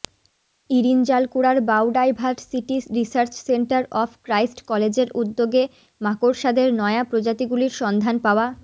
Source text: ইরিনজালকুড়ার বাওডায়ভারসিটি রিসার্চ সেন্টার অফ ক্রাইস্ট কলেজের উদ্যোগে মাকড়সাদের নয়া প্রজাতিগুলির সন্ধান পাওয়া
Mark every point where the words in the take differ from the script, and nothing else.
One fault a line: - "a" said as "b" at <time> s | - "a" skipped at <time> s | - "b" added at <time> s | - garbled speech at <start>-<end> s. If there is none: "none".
none